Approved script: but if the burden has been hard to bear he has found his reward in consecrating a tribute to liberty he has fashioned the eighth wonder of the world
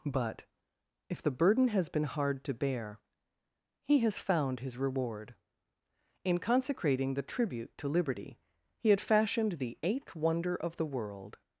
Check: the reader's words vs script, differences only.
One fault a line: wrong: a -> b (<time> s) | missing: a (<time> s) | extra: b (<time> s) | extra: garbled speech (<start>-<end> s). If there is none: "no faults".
wrong: a -> the (7.1 s)
wrong: has -> had (8.9 s)